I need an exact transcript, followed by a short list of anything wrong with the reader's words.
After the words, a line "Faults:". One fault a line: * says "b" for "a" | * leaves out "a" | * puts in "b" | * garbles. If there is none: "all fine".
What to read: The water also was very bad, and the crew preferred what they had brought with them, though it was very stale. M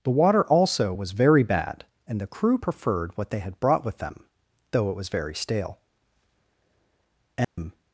The water also was very bad, and the crew preferred what they had brought with them, though it was very stale. M
Faults:
all fine